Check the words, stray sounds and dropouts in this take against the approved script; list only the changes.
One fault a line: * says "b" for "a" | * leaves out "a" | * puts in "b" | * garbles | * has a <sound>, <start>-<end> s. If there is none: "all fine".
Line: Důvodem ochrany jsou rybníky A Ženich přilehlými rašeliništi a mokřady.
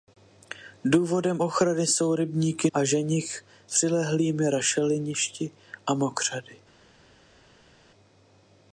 all fine